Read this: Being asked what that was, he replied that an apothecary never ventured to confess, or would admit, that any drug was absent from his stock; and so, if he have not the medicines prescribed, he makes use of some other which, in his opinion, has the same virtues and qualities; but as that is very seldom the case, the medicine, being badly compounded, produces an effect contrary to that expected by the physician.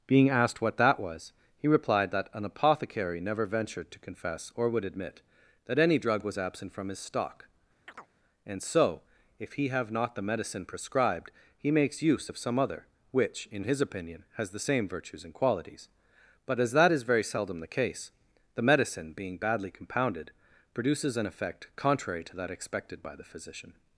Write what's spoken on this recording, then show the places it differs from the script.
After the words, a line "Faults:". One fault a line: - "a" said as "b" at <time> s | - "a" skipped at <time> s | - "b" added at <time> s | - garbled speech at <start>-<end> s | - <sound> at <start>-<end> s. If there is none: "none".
Being asked what that was, he replied that an apothecary never ventured to confess, or would admit, that any drug was absent from his stock; and so, if he have not the medicine prescribed, he makes use of some other which, in his opinion, has the same virtues and qualities; but as that is very seldom the case, the medicine, being badly compounded, produces an effect contrary to that expected by the physician.
Faults:
- chirp at 7.9-8.1 s
- "medicines" said as "medicine" at 10.2 s